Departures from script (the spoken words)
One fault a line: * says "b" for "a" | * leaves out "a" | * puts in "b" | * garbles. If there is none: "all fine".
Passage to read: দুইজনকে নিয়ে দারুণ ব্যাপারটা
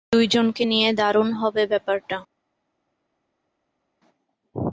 * puts in "হবে"